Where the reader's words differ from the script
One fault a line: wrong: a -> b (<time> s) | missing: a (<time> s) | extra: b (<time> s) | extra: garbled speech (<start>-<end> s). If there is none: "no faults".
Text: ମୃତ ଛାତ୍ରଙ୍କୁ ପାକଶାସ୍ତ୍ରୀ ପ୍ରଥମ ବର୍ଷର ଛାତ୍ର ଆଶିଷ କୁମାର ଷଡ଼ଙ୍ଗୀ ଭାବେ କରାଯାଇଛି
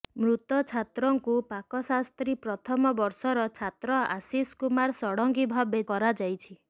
no faults